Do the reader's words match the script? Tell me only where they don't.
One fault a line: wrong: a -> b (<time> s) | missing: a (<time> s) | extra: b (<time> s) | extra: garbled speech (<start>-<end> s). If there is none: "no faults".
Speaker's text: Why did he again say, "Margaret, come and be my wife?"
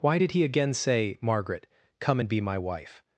no faults